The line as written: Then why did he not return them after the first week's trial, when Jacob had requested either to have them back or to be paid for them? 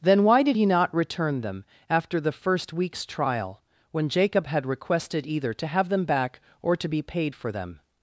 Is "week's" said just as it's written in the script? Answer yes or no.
yes